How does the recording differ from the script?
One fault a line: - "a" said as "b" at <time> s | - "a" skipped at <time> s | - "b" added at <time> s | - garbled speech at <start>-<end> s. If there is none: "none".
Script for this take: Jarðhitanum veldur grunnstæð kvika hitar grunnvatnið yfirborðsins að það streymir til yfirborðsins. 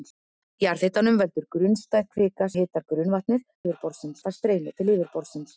none